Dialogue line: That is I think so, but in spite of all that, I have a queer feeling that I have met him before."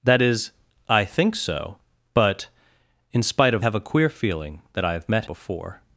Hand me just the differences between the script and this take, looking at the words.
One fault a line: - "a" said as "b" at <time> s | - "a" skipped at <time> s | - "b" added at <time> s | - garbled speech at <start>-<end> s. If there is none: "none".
- "all that I" skipped at 3.6 s
- "him" skipped at 5.3 s